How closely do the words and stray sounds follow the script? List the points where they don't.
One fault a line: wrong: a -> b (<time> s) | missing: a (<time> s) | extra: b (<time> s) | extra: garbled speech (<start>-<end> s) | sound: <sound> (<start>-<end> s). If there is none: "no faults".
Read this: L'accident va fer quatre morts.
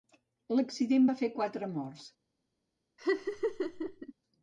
sound: laugh (3.0-4.1 s)